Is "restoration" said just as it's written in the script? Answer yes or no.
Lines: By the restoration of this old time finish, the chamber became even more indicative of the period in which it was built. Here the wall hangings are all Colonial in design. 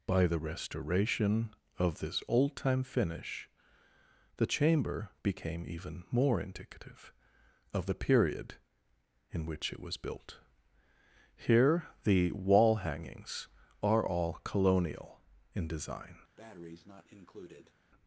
yes